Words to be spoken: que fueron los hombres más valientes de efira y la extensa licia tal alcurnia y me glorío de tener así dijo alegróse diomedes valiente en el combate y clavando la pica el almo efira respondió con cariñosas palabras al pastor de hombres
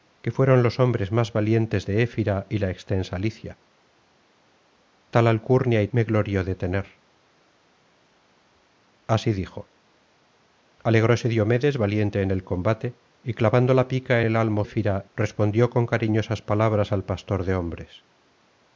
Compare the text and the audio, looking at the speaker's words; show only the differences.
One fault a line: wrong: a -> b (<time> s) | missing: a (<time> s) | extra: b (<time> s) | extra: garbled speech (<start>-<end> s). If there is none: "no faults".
no faults